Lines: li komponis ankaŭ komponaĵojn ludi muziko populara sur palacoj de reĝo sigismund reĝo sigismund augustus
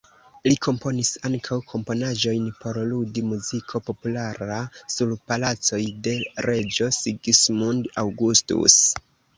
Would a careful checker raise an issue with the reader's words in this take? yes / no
yes